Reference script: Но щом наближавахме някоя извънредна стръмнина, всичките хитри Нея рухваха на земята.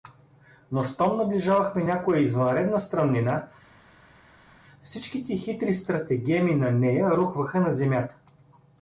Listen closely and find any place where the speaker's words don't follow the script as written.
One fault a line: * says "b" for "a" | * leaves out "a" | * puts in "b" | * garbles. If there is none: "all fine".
* puts in "стратегеми на"